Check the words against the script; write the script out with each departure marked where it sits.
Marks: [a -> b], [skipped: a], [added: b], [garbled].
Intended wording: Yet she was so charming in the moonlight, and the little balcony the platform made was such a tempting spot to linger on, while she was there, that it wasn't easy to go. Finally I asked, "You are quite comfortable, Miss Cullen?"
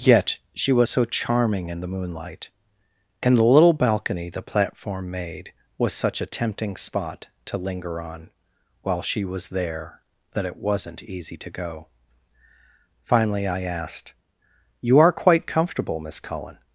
Yet she was so charming in the moonlight, and the little balcony the platform made was such a tempting spot to linger on, while she was there, that it wasn't easy to go. Finally I asked, "You are quite comfortable, Miss Cullen?"